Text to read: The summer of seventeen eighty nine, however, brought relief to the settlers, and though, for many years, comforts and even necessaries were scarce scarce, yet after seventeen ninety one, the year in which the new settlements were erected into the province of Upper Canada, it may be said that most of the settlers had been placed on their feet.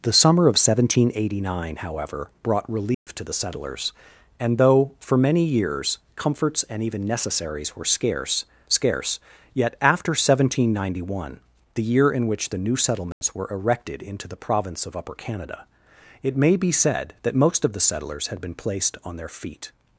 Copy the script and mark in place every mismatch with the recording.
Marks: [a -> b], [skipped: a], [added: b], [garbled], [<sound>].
The summer of seventeen eighty nine, however, brought relief [dropout] to the settlers, and though, for many years, comforts and even necessaries were scarce scarce, yet after seventeen ninety one, the year in which the new settlements [dropout] were erected into the province of Upper Canada, it may be said that most of the settlers had been placed on their feet.